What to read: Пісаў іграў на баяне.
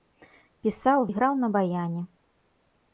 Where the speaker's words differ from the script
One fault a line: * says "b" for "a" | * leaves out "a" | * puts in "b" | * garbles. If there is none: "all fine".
all fine